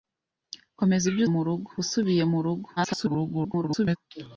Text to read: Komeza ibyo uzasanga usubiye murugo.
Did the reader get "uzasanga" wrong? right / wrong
wrong